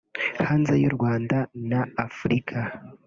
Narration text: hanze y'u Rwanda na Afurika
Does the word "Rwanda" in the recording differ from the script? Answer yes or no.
no